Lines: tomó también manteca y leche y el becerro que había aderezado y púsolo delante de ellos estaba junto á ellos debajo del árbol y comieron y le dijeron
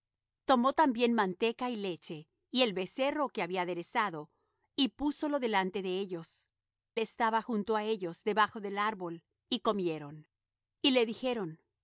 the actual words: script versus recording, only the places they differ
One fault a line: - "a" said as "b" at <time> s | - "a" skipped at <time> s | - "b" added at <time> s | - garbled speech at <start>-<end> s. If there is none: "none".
none